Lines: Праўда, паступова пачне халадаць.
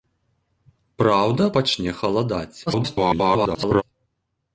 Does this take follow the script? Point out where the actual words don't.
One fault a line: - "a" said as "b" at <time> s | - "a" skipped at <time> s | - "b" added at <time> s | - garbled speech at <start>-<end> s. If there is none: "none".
- "паступова" skipped at 1.4 s
- garbled speech at 2.7-3.8 s